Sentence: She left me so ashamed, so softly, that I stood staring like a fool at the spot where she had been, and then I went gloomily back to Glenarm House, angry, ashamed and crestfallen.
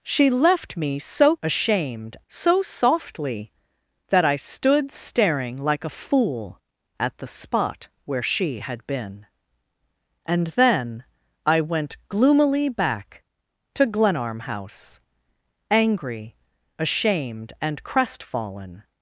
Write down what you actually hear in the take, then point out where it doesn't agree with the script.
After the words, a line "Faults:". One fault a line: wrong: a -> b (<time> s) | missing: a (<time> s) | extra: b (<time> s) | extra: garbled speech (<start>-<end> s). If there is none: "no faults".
She left me so ashamed, so softly, that I stood staring like a fool at the spot where she had been, and then I went gloomily back to Glenarm House, angry, ashamed and crestfallen.
Faults:
no faults